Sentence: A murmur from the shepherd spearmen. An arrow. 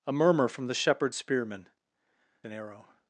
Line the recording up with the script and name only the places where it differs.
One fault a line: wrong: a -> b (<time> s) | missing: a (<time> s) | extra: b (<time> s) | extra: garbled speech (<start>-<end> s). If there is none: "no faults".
no faults